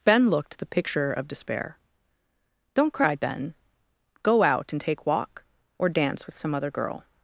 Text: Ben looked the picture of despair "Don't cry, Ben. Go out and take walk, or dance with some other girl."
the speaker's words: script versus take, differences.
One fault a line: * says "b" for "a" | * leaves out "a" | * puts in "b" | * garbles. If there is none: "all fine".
all fine